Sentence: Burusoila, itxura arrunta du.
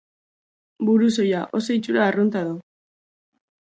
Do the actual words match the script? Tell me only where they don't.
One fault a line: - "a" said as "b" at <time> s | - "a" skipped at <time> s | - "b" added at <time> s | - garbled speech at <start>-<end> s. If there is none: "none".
- "oso" added at 1.6 s